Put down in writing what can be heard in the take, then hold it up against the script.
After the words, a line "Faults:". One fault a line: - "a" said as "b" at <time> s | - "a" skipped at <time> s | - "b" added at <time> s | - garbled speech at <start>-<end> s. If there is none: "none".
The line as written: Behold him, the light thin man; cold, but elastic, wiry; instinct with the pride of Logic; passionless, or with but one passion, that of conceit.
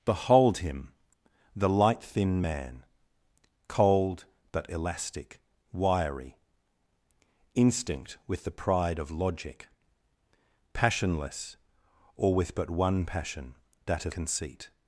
Behold him, the light thin man; cold, but elastic, wiry; instinct with the pride of Logic; passionless, or with but one passion, that of conceit.
Faults:
none